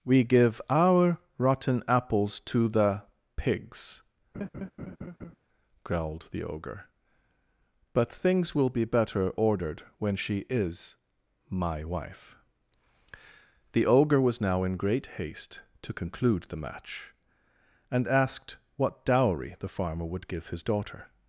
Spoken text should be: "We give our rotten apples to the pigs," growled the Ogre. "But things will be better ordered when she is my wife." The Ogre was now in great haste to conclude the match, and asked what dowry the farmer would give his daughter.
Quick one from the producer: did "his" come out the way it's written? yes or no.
yes